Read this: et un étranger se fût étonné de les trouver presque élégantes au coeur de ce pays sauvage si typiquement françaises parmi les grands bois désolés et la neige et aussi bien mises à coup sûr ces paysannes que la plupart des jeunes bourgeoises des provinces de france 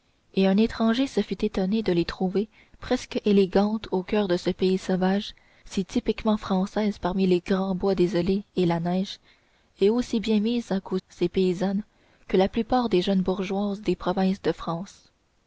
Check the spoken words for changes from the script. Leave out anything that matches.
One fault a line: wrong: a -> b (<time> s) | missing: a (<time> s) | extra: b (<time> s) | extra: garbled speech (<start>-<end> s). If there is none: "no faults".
missing: sûr (11.0 s)